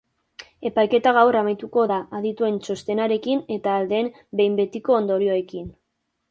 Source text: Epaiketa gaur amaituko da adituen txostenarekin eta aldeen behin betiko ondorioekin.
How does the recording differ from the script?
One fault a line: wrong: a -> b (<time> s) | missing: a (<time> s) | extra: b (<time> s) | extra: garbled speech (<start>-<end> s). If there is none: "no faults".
no faults